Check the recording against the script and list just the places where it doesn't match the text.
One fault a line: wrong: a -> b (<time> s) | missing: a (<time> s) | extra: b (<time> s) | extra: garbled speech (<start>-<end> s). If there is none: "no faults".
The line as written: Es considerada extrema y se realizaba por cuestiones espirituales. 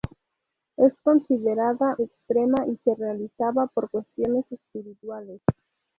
no faults